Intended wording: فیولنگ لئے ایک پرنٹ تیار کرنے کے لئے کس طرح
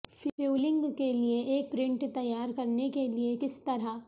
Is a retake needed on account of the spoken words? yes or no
yes